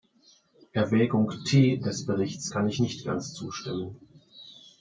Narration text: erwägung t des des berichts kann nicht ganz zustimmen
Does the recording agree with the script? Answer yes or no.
no